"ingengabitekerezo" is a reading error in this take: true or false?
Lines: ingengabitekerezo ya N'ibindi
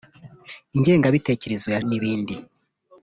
false